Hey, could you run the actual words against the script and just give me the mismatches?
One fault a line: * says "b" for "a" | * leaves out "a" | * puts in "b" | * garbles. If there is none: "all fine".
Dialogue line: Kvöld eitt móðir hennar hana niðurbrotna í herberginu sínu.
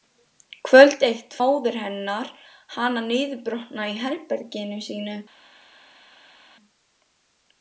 all fine